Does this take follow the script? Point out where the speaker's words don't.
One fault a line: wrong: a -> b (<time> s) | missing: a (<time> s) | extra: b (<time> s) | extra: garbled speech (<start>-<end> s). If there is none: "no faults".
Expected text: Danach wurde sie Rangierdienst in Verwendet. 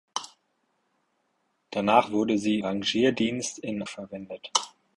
no faults